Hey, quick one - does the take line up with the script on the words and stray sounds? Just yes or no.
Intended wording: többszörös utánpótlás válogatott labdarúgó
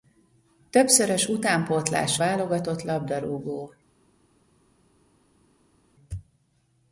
yes